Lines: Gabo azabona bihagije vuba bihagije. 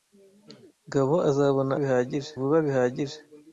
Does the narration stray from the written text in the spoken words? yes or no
no